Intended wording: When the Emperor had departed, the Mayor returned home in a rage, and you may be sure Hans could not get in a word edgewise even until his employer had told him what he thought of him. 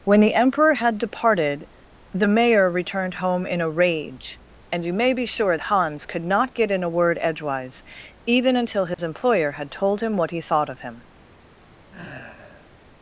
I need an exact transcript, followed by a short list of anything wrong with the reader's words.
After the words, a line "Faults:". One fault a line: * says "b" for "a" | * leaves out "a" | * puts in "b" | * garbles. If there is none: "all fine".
When the Emperor had departed, the Mayor returned home in a rage, and you may be sure Hans could not get in a word edgewise even until his employer had told him what he thought of him.
Faults:
all fine